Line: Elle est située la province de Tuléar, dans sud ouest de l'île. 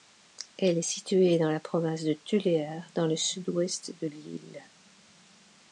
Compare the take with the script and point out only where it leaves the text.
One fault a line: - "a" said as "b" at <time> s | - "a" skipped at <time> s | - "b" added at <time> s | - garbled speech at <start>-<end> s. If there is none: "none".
- "dans" added at 1.4 s
- "le" added at 3.0 s